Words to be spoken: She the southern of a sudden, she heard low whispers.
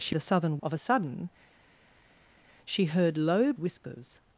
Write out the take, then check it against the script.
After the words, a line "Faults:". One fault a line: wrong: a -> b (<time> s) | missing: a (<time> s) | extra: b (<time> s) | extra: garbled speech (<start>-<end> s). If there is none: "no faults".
She the southern of a sudden, she heard low whispers.
Faults:
no faults